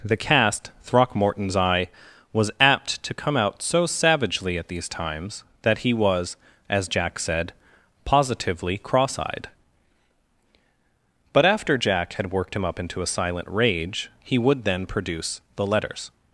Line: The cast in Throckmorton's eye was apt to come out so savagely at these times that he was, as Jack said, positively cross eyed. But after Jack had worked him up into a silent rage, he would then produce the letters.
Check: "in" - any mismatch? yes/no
yes